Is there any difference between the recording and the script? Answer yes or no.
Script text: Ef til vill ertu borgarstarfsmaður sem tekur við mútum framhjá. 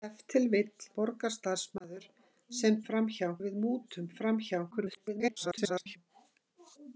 yes